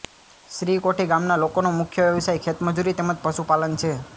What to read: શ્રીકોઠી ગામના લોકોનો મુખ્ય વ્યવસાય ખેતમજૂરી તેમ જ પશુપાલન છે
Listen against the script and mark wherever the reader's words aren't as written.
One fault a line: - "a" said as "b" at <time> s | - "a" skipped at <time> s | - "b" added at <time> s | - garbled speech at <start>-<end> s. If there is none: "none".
none